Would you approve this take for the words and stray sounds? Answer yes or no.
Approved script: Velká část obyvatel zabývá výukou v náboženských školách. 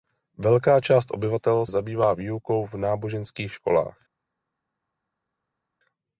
yes